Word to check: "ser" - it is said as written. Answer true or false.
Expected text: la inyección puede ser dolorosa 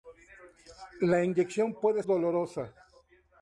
false